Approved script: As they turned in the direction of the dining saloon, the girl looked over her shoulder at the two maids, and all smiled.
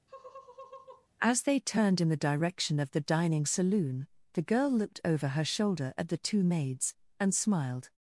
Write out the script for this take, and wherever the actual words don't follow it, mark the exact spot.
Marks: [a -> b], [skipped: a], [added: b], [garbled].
As they turned in the direction of the dining saloon, the girl looked over her shoulder at the two maids, and [skipped: all] smiled.